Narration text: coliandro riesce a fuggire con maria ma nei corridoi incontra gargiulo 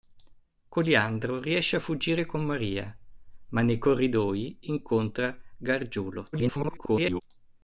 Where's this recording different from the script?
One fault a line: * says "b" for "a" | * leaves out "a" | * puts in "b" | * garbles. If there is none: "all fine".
* garbles